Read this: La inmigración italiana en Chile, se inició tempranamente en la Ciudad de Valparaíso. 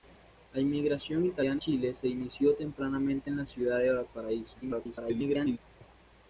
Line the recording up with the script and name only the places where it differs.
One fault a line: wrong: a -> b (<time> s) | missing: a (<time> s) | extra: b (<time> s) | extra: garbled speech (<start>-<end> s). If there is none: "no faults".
missing: en (1.6 s)
extra: garbled speech (4.6-5.6 s)